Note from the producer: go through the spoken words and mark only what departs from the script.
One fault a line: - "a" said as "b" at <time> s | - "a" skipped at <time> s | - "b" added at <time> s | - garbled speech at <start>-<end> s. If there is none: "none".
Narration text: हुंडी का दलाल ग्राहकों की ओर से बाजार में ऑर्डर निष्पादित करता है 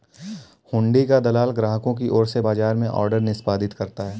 none